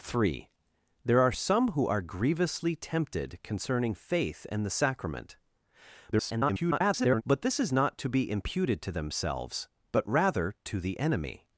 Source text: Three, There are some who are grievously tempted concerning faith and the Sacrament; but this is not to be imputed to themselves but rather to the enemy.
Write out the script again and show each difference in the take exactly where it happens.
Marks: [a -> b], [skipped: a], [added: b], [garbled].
Three, There are some who are grievously tempted concerning faith and the Sacrament; [garbled] but this is not to be imputed to themselves but rather to the enemy.